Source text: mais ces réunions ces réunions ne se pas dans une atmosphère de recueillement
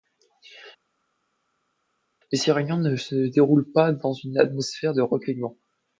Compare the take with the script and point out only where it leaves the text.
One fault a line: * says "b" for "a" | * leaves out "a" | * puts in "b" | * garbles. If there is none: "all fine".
* leaves out "ces réunions"
* puts in "déroulent"